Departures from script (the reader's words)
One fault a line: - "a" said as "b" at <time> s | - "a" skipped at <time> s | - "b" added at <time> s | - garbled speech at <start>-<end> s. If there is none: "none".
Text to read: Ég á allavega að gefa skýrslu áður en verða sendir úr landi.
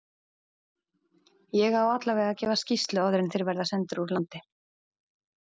- "þeir" added at 3.4 s